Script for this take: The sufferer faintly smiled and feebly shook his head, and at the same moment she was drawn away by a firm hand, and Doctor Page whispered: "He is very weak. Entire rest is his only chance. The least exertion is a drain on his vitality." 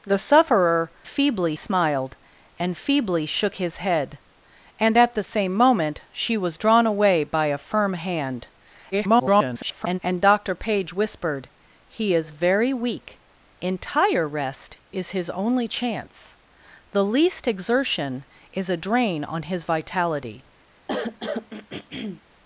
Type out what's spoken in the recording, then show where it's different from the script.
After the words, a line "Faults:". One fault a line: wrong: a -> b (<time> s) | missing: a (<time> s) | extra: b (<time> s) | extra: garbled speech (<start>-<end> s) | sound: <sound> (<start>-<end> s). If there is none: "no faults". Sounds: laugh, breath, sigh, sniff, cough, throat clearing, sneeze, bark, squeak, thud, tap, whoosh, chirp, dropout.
The sufferer feebly smiled and feebly shook his head, and at the same moment she was drawn away by a firm hand, [garbled] and Doctor Page whispered: "He is very weak. Entire rest is his only chance. The least exertion is a drain on his vitality."
Faults:
wrong: faintly -> feebly (1.1 s)
extra: garbled speech (8.9-10.0 s)
sound: throat clearing (20.9-22.2 s)